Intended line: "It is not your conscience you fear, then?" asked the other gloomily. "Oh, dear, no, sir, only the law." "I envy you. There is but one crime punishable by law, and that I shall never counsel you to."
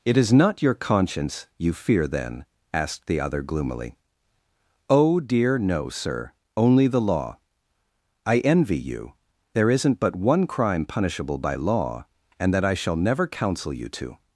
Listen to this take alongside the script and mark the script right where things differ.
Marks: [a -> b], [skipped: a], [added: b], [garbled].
"It is not your conscience you fear, then?" asked the other gloomily. "Oh, dear, no, sir, only the law." "I envy you. There [is -> isn't] but one crime punishable by law, and that I shall never counsel you to."